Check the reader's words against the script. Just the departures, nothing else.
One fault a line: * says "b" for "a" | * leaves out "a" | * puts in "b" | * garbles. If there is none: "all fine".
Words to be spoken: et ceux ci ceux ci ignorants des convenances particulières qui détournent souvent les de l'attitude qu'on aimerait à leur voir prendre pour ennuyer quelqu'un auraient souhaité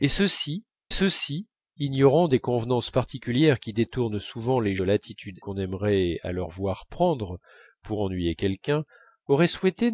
all fine